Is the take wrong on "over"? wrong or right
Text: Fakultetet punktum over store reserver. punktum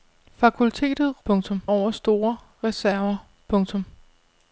right